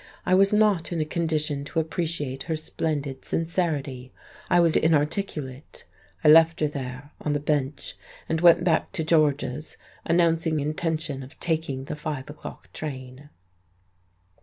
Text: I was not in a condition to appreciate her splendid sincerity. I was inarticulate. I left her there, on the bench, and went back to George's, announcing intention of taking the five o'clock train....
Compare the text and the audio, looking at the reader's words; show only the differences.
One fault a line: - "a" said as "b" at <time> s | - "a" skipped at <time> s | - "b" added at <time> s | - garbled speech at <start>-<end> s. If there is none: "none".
none